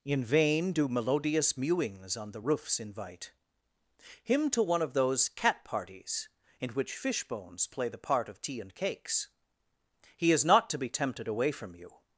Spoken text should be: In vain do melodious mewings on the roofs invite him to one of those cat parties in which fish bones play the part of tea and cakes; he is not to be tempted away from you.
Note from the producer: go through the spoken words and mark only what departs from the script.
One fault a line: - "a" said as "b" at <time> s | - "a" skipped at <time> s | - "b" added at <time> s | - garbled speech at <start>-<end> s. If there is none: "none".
none